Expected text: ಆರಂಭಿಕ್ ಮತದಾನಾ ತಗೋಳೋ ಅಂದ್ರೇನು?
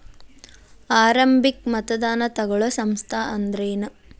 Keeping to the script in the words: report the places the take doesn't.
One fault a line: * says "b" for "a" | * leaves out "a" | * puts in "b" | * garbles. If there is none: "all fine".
* puts in "ಸಂಸ್ಥಾ"